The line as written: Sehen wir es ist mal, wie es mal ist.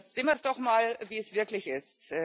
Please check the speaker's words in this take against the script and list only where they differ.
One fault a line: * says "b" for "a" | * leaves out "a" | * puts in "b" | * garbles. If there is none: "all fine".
* says "doch" for "ist"
* says "wirklich" for "mal"